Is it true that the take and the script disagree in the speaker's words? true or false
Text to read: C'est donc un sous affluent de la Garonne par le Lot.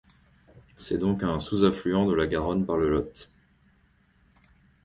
false